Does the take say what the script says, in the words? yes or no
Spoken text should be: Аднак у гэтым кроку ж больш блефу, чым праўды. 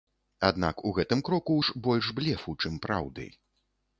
yes